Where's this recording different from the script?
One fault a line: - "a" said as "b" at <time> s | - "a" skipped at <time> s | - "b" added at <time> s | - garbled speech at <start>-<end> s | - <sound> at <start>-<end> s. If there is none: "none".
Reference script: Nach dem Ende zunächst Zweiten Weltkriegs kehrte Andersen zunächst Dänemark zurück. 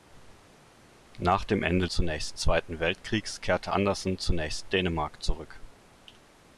none